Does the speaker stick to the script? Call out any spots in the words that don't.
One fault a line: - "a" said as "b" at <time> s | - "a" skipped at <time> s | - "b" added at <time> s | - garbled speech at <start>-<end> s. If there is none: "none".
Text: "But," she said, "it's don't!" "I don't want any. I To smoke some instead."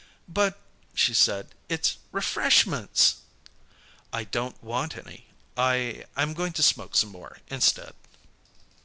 - "don't" said as "refreshments" at 2.1 s
- "I'm going" added at 6.1 s
- "more" added at 7.1 s